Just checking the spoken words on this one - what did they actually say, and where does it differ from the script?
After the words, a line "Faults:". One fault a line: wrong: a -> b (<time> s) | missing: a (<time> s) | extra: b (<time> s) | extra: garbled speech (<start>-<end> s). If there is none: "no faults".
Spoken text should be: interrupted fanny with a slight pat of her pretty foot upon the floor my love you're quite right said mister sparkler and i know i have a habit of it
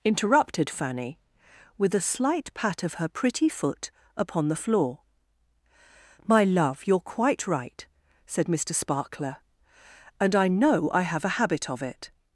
interrupted fanny with a slight pat of her pretty foot upon the floor my love you're quite right said mister sparkler and i know i have a habit of it
Faults:
no faults